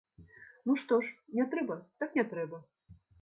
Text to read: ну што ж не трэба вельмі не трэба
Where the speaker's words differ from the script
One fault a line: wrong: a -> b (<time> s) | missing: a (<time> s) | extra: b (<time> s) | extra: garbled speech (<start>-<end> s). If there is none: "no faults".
wrong: вельмі -> так (2.0 s)